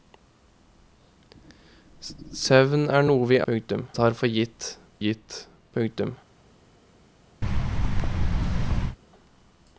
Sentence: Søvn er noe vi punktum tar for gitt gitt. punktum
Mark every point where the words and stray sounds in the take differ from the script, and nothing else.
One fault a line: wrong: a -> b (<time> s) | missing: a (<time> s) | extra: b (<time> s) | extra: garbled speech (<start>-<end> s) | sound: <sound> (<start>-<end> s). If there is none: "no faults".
sound: thud (7.4-9.0 s)